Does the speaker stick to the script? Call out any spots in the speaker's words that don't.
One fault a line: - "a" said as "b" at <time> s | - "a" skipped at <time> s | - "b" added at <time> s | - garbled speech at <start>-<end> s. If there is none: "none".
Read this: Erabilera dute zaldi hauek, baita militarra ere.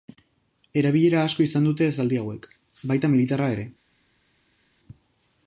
- "asko izan" added at 1.2 s